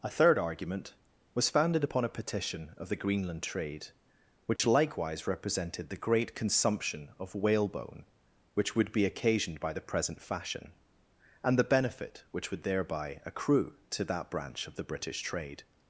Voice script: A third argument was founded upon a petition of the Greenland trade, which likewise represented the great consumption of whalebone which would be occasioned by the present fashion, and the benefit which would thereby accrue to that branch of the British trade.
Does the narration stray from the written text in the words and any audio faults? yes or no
yes